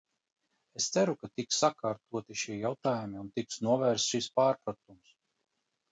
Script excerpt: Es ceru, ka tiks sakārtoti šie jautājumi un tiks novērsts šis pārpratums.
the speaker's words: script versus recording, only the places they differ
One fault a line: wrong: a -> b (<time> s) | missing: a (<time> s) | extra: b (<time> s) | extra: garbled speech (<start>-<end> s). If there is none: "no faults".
no faults